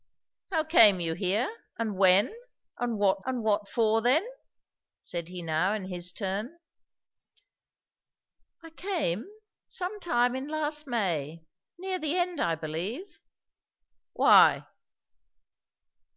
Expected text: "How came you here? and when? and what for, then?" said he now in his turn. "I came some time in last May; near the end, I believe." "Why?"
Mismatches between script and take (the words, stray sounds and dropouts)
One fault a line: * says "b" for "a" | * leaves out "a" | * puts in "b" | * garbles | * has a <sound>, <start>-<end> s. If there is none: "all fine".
* puts in "and what"